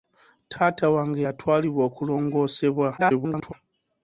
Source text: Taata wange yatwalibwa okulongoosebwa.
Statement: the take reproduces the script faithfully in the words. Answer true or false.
false